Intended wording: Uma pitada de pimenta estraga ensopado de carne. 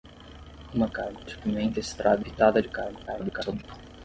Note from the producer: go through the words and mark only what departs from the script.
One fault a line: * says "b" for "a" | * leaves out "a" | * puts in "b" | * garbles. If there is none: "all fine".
* says "carne" for "pitada"
* says "pitada" for "ensopado"
* garbles